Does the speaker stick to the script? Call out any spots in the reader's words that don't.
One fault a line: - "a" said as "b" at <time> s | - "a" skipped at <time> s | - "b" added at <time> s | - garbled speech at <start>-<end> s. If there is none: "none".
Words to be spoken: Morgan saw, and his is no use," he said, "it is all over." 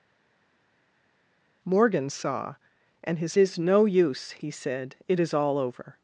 none